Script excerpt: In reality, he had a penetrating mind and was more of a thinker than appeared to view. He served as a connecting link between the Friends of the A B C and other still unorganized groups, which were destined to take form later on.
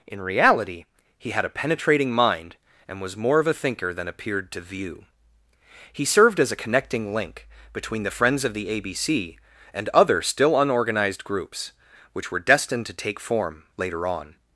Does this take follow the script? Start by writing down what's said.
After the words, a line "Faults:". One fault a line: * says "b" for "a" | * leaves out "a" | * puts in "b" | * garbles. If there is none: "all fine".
In reality, he had a penetrating mind and was more of a thinker than appeared to view. He served as a connecting link between the Friends of the A B C and other still unorganized groups, which were destined to take form later on.
Faults:
all fine